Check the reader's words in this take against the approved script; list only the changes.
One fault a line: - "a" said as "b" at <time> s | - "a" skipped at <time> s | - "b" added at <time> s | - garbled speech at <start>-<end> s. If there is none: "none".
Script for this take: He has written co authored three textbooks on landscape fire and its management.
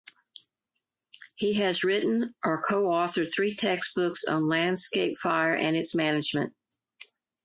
- "or" added at 2.4 s